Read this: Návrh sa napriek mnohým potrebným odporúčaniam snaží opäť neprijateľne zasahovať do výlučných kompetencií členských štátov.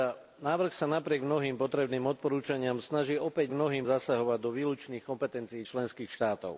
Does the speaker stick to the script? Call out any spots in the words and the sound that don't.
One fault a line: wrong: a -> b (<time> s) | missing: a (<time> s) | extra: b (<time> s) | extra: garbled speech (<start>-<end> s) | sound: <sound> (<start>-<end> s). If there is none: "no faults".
wrong: neprijateľne -> mnohým (3.5 s)